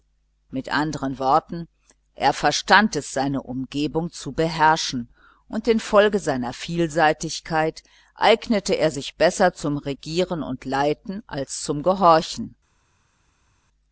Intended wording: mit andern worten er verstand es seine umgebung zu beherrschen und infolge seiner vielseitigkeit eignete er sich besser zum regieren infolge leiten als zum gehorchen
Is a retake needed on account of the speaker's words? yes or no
yes